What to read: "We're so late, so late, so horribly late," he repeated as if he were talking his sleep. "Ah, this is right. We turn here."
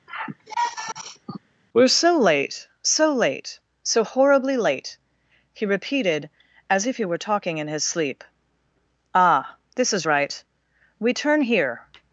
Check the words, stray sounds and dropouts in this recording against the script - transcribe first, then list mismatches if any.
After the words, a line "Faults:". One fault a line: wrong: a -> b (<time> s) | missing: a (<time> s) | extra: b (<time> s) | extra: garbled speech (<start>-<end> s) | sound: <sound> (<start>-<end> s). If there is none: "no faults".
"We're so late, so late, so horribly late," he repeated as if he were talking in his sleep. "Ah, this is right. We turn here."
Faults:
sound: sigh (0.1-1.4 s)
extra: in (7.6 s)